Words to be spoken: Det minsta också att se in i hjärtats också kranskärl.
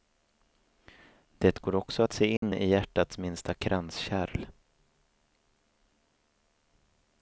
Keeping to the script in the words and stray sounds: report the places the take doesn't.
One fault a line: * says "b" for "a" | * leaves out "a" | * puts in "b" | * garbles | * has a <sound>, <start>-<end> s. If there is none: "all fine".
* says "går" for "minsta"
* has a dropout, 2.4-2.4 s
* says "minsta" for "också"